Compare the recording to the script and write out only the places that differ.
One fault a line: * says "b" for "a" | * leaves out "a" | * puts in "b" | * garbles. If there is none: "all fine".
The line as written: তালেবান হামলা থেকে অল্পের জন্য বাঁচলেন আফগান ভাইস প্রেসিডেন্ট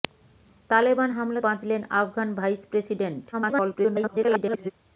* leaves out "থেকে অল্পের জন্য"
* garbles